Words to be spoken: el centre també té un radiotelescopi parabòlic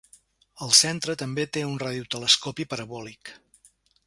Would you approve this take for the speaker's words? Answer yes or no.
yes